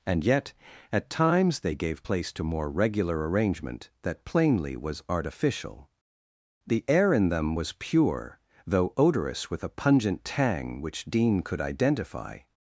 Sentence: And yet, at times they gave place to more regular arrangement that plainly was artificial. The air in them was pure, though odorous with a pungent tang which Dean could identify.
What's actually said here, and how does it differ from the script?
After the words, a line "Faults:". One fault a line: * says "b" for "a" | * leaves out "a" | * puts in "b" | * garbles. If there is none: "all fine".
And yet, at times they gave place to more regular arrangement that plainly was artificial. The air in them was pure, though odorous with a pungent tang which Dean could identify.
Faults:
all fine